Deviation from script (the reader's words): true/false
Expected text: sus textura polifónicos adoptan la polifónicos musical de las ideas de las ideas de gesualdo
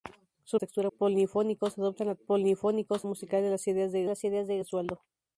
false